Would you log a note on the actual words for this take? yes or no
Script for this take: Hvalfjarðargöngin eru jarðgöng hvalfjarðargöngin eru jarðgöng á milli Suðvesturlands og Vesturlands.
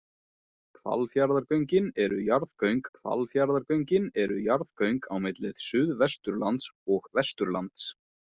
no